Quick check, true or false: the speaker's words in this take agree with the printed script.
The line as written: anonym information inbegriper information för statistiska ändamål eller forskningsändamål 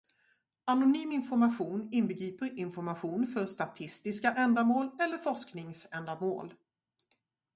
true